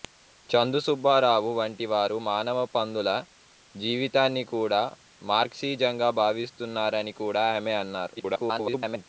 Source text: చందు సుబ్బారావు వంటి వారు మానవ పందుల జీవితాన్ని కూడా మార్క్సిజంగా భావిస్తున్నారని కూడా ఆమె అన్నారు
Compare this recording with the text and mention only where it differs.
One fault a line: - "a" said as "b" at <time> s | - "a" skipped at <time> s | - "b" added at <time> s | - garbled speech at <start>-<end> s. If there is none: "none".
- garbled speech at 8.2-9.1 s